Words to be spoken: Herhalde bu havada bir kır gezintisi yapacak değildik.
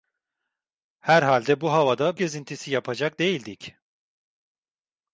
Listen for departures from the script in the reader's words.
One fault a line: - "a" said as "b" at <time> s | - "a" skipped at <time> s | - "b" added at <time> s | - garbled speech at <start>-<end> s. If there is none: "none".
- "bir kır" skipped at 2.2 s